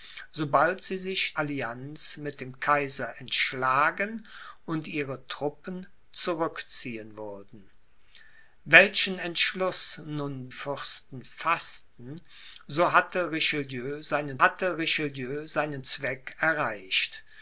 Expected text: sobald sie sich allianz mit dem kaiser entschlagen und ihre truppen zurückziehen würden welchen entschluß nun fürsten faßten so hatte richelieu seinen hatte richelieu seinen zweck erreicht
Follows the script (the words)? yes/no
yes